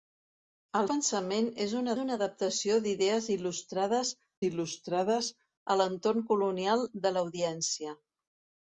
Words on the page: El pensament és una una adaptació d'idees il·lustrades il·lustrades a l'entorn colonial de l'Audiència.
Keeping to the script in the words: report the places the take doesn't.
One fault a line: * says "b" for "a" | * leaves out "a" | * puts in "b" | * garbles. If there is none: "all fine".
all fine